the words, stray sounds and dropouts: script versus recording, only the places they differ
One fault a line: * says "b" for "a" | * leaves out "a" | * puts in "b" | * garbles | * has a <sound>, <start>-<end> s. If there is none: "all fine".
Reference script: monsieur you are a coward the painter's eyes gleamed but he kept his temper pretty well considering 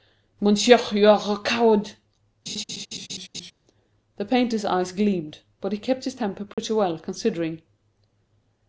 * has a laugh, 2.5-3.5 s
* has a dropout, 6.5-6.6 s